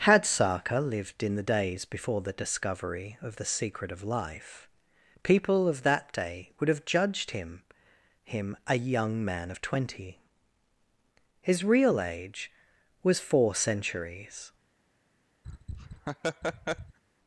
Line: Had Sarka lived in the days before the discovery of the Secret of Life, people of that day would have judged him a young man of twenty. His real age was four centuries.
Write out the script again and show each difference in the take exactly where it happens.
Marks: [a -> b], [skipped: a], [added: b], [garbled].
Had Sarka lived in the days before the discovery of the Secret of Life, people of that day would have judged him [added: him] a young man of twenty. His real age was four centuries.